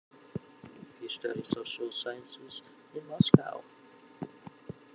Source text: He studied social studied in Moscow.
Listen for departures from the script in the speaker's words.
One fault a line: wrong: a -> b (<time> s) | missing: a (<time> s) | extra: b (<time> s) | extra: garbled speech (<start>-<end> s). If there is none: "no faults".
wrong: studied -> sciences (1.9 s)